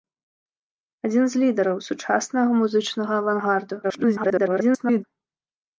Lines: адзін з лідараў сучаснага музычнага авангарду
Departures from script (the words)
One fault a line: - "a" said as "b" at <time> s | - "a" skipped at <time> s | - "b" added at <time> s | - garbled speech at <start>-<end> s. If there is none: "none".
- garbled speech at 3.8-5.0 s